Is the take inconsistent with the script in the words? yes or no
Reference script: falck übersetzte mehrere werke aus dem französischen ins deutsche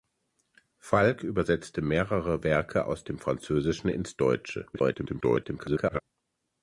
yes